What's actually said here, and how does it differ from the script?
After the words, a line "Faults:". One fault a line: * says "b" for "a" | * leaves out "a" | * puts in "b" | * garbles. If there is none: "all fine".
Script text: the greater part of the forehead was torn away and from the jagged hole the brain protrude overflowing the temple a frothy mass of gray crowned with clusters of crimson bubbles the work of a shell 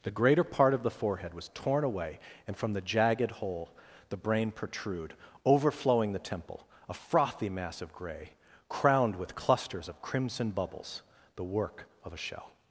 the greater part of the forehead was torn away and from the jagged hole the brain protrude overflowing the temple a frothy mass of gray crowned with clusters of crimson bubbles the work of a shell
Faults:
all fine